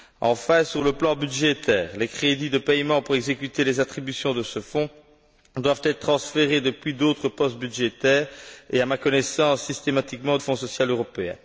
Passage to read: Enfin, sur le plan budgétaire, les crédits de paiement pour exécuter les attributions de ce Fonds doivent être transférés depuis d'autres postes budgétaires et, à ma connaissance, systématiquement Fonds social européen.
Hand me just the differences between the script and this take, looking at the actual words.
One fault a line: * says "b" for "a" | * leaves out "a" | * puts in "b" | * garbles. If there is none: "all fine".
all fine